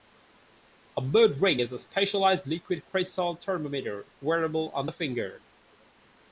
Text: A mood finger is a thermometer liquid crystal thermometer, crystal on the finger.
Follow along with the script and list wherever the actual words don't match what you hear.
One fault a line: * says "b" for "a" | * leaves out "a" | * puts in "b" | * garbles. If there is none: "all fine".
* says "ring" for "finger"
* says "specialized" for "thermometer"
* says "wearable" for "crystal"